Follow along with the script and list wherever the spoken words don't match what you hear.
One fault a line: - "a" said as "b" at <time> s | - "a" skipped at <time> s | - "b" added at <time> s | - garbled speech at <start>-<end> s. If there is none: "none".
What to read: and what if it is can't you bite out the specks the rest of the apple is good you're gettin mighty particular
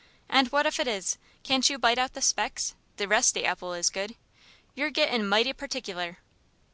- "of" skipped at 3.4 s